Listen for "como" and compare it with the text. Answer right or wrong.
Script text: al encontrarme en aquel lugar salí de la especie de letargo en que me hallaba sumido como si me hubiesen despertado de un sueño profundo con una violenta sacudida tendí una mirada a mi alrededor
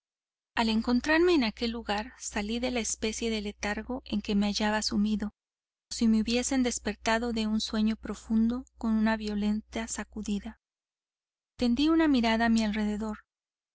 wrong